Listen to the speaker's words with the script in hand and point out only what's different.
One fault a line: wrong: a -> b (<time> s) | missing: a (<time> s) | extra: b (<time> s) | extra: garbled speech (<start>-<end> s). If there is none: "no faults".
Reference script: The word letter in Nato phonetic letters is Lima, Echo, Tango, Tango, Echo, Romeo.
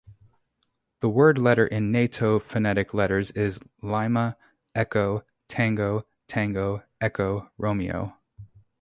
no faults